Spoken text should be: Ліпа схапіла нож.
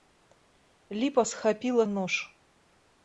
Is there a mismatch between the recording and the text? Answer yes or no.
no